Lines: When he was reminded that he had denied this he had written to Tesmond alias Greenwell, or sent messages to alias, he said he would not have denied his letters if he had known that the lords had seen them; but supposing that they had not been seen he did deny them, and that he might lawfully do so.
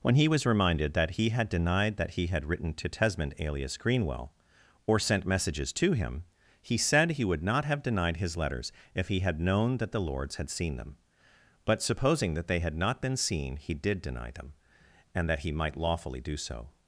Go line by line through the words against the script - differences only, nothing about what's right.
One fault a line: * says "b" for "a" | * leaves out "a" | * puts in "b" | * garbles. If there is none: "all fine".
* says "that" for "this"
* says "him" for "alias"